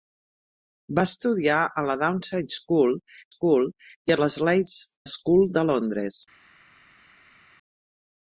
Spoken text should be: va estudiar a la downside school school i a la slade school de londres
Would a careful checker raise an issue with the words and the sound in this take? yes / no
no